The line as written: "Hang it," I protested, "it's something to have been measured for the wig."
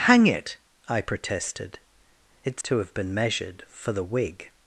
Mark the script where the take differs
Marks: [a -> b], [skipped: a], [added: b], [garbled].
"Hang it," I protested, "it's [skipped: something] to have been measured for the wig."